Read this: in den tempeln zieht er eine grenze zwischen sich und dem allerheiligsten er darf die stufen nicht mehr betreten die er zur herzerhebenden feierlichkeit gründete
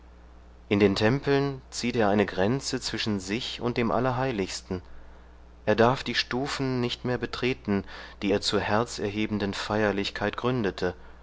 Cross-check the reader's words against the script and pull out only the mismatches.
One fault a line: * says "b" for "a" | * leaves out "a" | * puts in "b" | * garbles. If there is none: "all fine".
all fine